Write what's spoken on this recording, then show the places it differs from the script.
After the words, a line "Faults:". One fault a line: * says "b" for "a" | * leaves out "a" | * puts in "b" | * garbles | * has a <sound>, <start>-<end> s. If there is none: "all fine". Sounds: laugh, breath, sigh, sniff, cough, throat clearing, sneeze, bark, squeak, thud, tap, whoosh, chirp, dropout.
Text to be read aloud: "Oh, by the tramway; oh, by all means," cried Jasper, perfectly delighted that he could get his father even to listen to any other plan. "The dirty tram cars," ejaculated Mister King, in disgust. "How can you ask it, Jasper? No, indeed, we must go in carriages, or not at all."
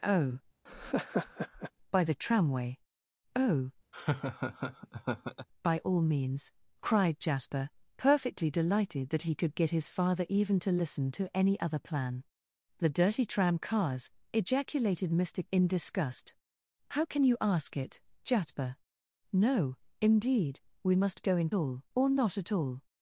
"Oh, by the tramway; oh, by all means," cried Jasper, perfectly delighted that he could get his father even to listen to any other plan. "The dirty tram cars," ejaculated Mister In disgust. "How can you ask it, Jasper? No, indeed, we must go in all, or not at all."
Faults:
* has a laugh, 0.7-1.7 s
* has a laugh, 3.9-5.5 s
* leaves out "King"
* says "all" for "carriages"